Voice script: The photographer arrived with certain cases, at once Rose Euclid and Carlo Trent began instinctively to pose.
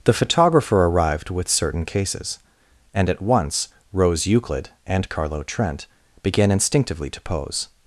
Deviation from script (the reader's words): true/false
true